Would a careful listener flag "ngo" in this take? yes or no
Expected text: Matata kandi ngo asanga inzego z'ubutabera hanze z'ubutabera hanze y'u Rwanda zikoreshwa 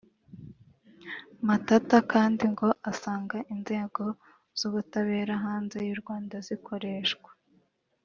no